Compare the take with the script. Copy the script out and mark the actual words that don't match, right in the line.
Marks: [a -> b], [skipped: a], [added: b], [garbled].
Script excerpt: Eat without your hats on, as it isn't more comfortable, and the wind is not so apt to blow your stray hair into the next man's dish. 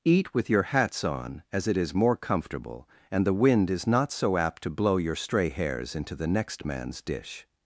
Eat [without -> with] your hats on, as it [isn't -> is] more comfortable, and the wind is not so apt to blow your stray [hair -> hairs] into the next man's dish.